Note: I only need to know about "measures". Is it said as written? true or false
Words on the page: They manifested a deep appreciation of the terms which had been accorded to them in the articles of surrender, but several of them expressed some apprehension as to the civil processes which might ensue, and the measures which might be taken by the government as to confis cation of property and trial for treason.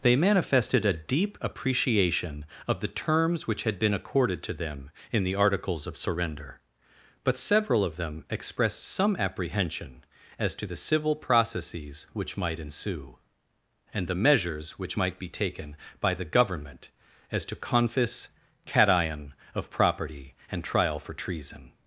true